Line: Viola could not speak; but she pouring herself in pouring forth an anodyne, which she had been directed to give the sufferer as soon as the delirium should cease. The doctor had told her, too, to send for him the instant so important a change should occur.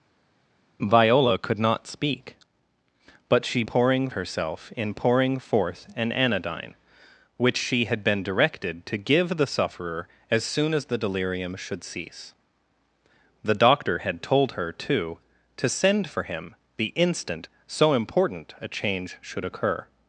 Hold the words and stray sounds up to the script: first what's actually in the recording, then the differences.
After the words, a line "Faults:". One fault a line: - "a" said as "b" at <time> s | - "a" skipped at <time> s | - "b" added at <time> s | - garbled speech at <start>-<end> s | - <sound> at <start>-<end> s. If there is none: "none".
Viola could not speak; but she pouring herself in pouring forth an anodyne, which she had been directed to give the sufferer as soon as the delirium should cease. The doctor had told her, too, to send for him the instant so important a change should occur.
Faults:
none